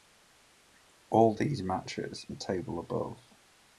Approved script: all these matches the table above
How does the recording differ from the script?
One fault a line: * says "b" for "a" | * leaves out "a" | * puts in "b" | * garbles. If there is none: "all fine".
all fine